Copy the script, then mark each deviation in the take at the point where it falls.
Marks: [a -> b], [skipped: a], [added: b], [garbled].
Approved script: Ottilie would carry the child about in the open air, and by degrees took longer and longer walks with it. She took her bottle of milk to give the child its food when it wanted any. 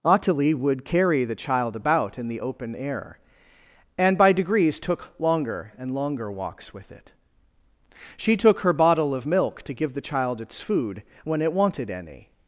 Ottilie would carry the child about in the open air, and by degrees took longer and longer walks with it. She took her bottle of milk to give the child its food when it wanted any.